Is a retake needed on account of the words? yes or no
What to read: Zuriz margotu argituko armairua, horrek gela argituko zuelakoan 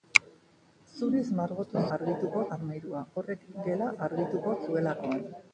no